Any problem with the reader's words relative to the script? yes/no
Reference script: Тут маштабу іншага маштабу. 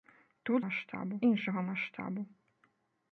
no